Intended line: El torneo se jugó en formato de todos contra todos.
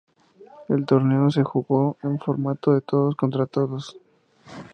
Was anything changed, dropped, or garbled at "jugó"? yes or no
no